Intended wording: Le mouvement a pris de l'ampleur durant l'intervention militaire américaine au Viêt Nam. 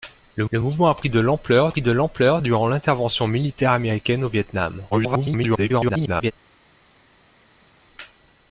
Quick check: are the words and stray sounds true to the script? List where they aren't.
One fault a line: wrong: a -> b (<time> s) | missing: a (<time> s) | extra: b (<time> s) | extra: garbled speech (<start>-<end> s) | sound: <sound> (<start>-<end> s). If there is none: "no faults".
extra: le (0.5 s)
extra: pris de l'ampleur (1.7 s)
extra: garbled speech (4.9-6.3 s)